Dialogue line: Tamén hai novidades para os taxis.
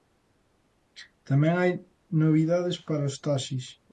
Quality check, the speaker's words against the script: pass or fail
pass